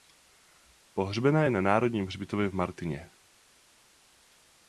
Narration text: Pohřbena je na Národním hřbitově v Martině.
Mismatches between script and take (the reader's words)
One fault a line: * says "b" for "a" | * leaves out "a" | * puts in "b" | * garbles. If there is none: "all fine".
all fine